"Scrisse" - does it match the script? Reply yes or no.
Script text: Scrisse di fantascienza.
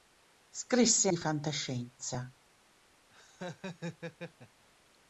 yes